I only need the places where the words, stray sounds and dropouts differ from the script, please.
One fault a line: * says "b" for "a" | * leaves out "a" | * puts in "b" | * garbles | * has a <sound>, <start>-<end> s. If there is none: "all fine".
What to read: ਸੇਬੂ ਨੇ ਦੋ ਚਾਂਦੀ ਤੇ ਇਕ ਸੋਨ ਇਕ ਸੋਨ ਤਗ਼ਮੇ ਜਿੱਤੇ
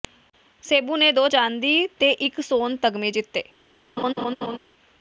* leaves out "ਇਕ ਸੋਨ"
* has a laugh, 4.0-4.6 s